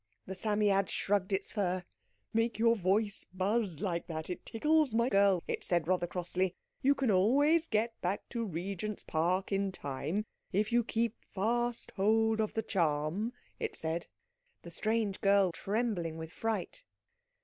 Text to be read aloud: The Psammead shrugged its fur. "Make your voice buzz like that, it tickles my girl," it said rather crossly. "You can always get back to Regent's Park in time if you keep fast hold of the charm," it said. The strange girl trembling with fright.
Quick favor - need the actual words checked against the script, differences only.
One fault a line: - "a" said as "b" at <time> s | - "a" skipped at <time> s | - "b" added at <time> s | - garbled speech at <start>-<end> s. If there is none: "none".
none